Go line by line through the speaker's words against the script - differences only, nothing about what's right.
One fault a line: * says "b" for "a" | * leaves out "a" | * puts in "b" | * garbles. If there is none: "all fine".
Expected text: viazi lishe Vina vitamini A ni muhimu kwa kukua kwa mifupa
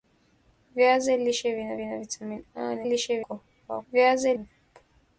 * puts in "Vina"
* says "lishe" for "muhimu"
* says "viazi" for "kwa"